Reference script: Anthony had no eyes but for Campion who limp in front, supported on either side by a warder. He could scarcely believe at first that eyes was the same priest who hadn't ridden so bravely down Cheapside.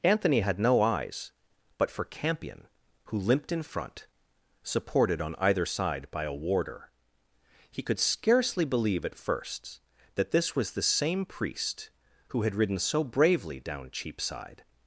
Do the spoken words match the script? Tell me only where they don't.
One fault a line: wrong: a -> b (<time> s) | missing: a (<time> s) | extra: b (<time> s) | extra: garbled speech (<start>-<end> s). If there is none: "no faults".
wrong: limp -> limped (3.2 s)
wrong: eyes -> this (10.3 s)
wrong: hadn't -> had (12.4 s)